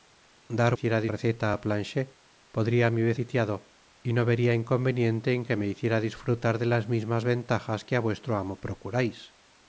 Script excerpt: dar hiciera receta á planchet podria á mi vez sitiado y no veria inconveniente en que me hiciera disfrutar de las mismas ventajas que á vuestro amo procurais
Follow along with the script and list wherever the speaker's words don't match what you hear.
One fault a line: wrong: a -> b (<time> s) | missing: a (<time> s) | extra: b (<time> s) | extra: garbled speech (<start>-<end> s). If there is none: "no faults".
no faults